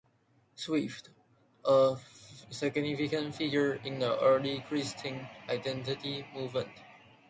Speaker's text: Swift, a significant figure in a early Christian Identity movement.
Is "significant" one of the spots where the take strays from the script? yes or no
no